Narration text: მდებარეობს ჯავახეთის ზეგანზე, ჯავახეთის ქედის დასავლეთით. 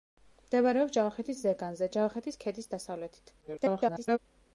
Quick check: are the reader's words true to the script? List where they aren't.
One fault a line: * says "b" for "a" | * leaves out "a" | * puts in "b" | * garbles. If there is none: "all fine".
* garbles